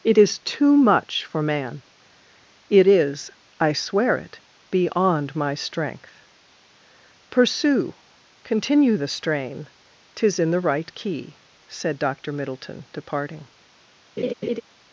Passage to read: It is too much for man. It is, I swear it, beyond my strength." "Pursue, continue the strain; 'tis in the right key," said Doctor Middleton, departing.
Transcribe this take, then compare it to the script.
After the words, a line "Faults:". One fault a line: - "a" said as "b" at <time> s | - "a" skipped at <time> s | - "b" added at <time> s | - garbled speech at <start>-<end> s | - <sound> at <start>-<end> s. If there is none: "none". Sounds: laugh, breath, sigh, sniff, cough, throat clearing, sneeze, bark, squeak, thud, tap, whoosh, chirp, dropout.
It is too much for man. It is, I swear it, beyond my strength." "Pursue, continue the strain; 'tis in the right key," said Doctor Middleton, departing.
Faults:
- laugh at 14.2-14.6 s